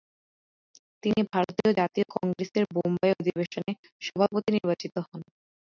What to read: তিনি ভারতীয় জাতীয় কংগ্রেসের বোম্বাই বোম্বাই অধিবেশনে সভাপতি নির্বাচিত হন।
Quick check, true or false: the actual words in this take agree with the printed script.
false